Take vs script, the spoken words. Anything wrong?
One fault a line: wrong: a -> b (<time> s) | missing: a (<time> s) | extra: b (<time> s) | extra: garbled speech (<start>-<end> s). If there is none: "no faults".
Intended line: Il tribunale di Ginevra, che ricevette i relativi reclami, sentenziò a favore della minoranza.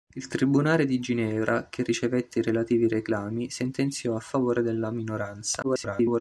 extra: garbled speech (5.6-6.2 s)